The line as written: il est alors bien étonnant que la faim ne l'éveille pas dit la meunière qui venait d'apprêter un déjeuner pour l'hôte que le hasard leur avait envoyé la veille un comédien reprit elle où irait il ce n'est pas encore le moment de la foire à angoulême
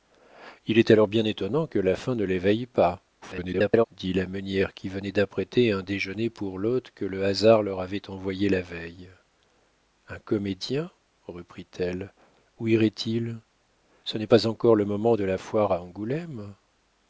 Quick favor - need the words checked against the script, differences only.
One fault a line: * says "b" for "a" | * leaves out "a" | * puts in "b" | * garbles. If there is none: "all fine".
* garbles